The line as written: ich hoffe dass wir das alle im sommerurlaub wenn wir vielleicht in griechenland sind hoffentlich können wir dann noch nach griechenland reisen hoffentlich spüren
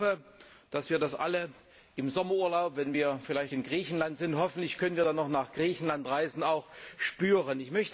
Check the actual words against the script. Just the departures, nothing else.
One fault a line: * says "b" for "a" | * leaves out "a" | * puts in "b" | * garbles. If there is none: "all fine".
* says "auch" for "hoffentlich"